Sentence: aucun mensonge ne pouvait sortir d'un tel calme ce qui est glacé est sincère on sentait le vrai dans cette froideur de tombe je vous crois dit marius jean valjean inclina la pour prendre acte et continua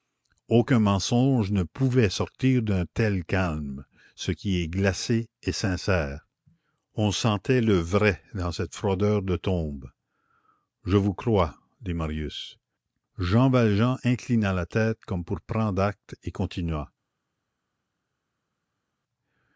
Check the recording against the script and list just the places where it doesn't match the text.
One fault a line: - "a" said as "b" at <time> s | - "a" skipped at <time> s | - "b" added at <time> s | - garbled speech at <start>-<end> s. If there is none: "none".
- "tête comme" added at 14.6 s